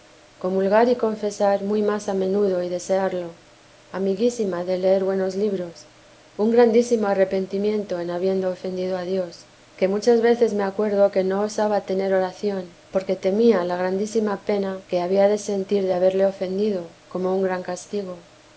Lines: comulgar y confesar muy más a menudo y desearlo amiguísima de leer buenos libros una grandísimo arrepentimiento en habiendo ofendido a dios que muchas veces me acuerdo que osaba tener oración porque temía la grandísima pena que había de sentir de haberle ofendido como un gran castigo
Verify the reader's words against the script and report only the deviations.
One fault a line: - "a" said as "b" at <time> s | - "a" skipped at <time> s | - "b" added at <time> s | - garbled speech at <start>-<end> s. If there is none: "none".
- "una" said as "un" at 6.4 s
- "no" added at 11.2 s